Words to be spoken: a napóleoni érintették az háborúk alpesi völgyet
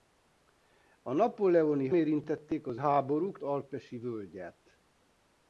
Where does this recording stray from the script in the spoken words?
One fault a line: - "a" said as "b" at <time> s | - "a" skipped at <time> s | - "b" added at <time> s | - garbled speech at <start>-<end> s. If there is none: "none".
none